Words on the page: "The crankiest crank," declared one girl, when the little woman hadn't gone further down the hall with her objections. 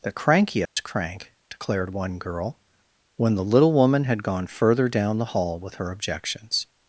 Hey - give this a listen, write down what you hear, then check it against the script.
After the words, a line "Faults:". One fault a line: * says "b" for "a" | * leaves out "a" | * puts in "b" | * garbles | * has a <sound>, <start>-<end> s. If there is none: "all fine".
"The crankiest crank," declared one girl, when the little woman had gone further down the hall with her objections.
Faults:
* has a dropout, 0.7-0.8 s
* says "had" for "hadn't"